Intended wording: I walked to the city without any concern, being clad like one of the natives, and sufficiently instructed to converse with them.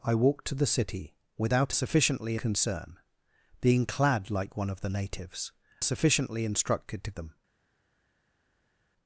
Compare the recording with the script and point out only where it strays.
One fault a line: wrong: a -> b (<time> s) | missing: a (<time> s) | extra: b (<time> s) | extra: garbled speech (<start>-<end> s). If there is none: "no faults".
wrong: any -> sufficiently (1.7 s)
missing: and (5.5 s)
missing: converse with (7.1 s)